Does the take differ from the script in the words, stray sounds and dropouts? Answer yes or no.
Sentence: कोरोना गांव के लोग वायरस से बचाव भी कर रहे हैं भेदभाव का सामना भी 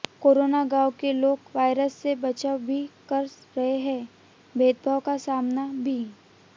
no